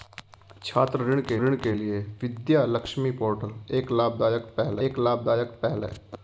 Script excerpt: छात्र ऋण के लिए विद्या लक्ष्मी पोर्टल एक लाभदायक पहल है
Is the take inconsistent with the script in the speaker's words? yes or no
yes